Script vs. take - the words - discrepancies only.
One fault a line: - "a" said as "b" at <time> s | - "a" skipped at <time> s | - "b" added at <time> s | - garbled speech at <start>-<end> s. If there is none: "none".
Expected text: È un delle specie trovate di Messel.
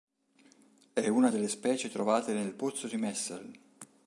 - "un" said as "una" at 1.1 s
- "nel pozzo" added at 2.3 s